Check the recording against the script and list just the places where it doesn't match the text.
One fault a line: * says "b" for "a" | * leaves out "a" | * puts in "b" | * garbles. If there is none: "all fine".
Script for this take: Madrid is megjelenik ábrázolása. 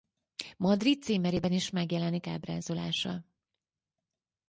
* puts in "címerében"